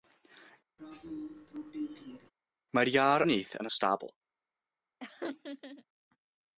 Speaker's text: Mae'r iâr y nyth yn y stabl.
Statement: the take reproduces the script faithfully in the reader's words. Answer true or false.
true